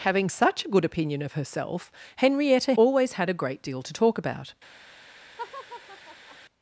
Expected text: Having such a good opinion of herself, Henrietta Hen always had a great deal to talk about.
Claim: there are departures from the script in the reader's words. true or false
true